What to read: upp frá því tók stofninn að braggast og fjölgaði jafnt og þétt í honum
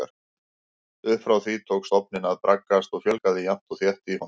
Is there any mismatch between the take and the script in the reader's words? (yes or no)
no